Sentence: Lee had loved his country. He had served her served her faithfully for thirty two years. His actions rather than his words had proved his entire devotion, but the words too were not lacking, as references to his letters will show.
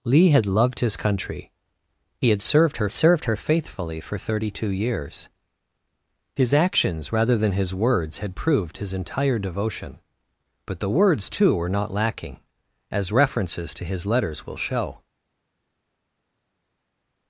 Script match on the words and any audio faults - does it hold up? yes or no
yes